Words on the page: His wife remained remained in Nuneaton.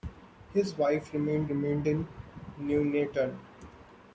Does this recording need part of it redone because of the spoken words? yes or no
no